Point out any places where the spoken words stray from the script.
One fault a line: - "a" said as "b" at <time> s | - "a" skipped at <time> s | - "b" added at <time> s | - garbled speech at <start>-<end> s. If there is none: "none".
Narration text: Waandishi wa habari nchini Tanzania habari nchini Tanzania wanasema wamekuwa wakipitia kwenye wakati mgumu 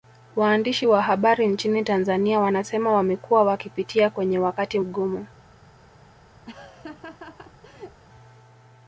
- "habari nchini Tanzania" skipped at 2.4 s